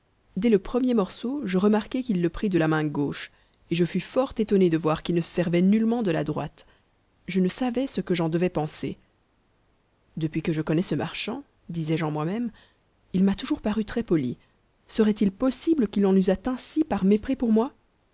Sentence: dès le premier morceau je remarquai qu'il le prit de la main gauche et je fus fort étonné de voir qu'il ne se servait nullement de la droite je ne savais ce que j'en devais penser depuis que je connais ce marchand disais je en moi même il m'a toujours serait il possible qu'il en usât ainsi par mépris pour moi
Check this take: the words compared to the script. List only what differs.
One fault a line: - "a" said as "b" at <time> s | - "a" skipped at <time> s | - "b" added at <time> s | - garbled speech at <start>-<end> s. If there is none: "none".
- "paru très poli" added at 13.6 s